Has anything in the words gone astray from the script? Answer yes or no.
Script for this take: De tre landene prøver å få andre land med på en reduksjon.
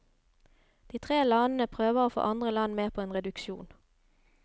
no